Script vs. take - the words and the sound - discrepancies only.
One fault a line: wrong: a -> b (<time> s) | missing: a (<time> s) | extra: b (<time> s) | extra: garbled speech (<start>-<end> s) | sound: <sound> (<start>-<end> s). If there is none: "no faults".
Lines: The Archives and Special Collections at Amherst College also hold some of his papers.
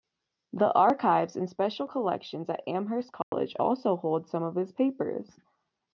sound: dropout (3.2-3.3 s)